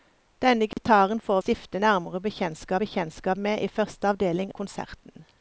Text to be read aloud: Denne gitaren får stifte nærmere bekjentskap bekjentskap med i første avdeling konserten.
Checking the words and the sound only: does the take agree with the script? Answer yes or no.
no